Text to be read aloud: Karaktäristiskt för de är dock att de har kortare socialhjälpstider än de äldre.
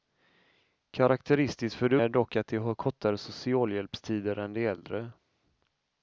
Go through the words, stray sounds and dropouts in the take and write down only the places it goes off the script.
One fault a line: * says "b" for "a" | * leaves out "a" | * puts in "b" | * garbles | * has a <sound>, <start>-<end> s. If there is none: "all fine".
all fine